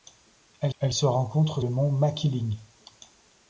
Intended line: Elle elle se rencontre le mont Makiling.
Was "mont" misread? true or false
false